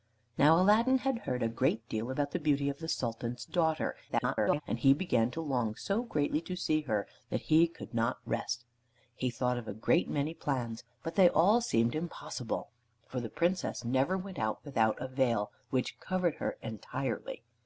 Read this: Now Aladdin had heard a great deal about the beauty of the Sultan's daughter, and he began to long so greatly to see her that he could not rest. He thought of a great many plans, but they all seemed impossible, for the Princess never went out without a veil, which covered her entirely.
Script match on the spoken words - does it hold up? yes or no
no